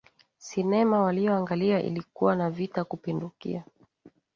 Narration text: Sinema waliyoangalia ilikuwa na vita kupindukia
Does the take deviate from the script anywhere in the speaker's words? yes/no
no